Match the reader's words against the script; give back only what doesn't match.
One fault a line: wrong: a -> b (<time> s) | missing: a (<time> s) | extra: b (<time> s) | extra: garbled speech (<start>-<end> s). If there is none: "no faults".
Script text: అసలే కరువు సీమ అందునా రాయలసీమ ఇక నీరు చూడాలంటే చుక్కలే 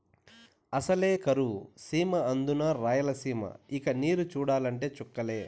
no faults